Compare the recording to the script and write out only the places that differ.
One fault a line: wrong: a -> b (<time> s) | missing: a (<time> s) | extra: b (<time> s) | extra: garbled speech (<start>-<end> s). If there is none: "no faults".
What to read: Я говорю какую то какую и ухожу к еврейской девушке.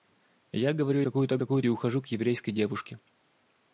no faults